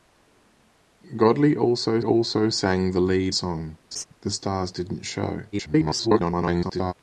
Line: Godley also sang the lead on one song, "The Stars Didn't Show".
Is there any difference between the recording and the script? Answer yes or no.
yes